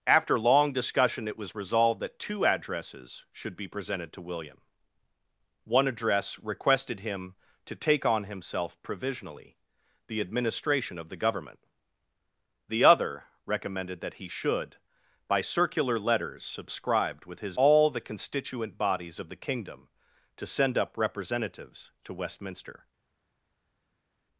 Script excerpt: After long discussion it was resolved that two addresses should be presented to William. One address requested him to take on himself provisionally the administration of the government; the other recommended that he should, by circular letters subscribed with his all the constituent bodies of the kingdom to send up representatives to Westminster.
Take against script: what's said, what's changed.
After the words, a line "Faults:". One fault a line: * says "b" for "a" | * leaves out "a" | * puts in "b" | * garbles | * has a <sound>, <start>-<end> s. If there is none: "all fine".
After long discussion it was resolved that two addresses should be presented to William. One address requested him to take on himself provisionally the administration of the government; the other recommended that he should, by circular letters subscribed with his all the constituent bodies of the kingdom to send up representatives to Westminster.
Faults:
all fine